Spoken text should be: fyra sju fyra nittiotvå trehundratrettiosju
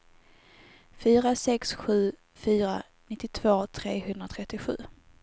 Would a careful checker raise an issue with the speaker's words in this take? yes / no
yes